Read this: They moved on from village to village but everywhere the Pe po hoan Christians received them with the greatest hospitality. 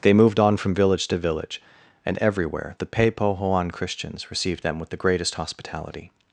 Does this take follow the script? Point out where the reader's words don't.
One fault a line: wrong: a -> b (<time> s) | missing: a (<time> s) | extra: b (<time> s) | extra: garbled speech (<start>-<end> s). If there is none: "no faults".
wrong: but -> and (2.0 s)